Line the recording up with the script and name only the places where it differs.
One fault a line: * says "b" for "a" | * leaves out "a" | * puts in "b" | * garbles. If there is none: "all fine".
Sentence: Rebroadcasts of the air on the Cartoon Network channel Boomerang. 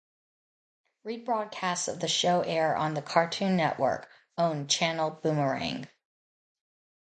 * puts in "show"
* puts in "owned"